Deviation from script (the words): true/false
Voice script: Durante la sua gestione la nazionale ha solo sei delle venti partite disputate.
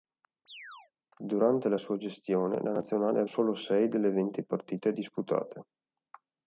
false